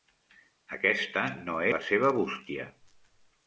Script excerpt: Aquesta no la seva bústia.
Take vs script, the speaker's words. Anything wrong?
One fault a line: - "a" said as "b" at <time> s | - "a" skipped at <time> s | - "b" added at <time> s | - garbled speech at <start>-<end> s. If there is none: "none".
none